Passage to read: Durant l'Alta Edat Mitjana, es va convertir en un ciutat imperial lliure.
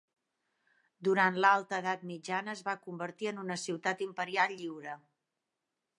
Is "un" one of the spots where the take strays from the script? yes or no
yes